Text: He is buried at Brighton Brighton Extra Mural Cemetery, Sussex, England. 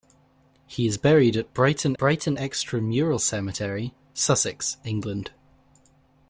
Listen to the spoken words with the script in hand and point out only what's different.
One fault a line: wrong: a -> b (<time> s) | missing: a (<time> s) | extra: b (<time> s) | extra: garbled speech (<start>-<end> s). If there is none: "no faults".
no faults